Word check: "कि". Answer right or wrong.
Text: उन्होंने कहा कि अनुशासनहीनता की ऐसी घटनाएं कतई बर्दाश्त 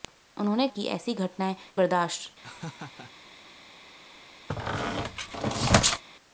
wrong